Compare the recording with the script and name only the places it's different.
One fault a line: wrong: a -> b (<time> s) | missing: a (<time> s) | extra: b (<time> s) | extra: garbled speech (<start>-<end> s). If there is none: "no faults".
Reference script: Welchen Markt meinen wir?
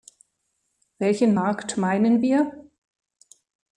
no faults